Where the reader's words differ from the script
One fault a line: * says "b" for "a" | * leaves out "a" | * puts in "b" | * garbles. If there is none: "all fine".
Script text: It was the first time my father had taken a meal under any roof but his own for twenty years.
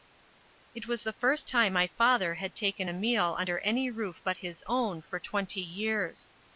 all fine